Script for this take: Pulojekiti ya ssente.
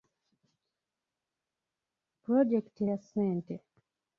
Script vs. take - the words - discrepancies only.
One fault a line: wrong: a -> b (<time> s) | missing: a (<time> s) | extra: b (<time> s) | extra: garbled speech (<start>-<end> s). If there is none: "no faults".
no faults